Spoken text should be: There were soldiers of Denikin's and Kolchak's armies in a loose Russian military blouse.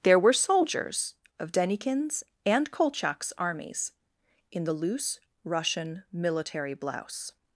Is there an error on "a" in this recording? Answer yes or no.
yes